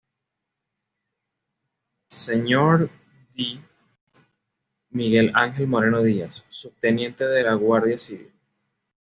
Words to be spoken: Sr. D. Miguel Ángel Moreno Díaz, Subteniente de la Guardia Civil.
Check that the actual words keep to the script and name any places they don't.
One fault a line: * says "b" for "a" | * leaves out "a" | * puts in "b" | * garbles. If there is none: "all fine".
all fine